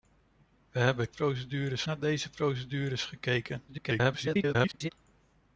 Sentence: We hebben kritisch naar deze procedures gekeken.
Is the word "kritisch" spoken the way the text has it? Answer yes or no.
no